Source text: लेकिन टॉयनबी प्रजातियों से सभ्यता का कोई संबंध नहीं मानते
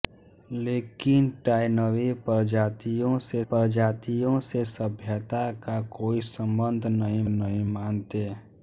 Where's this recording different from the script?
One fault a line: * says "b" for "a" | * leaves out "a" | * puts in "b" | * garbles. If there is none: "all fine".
* puts in "प्रजातियों से"
* puts in "नहीं"